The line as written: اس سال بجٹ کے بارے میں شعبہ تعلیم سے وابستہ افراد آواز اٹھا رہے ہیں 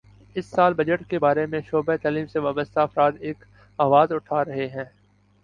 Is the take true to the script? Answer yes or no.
no